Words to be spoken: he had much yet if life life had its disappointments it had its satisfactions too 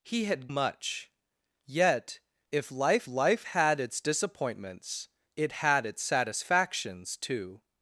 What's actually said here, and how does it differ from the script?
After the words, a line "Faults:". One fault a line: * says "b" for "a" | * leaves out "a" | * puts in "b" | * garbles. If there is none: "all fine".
he had much yet if life life had its disappointments it had its satisfactions too
Faults:
all fine